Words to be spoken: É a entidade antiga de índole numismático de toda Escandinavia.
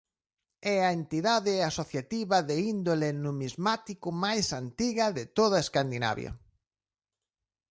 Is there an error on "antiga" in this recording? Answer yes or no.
yes